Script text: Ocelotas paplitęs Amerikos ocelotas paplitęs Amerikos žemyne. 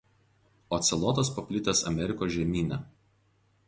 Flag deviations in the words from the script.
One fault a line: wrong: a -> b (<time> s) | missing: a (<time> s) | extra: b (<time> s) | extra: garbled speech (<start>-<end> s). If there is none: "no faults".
missing: ocelotas paplitęs Amerikos (2.3 s)